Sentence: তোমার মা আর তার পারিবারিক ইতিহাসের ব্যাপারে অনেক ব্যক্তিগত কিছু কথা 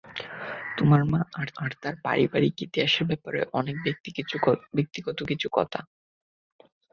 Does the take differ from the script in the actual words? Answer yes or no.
yes